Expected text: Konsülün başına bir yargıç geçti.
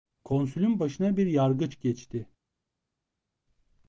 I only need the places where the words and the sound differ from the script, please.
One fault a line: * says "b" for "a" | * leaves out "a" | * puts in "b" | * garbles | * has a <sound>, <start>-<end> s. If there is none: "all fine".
all fine